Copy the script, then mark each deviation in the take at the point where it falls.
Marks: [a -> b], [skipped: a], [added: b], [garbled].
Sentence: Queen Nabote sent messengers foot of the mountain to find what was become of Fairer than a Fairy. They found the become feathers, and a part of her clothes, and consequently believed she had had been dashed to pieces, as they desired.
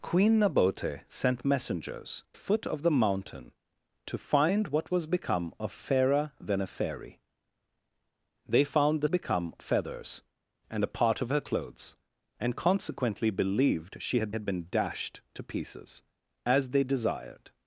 Queen Nabote sent messengers foot of the mountain to find what was become of Fairer than a Fairy. They found the become feathers, and a part of her clothes, and consequently believed she had had been dashed to pieces, as they desired.